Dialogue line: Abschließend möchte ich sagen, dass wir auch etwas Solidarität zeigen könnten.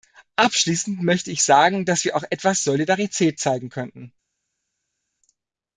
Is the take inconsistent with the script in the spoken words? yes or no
no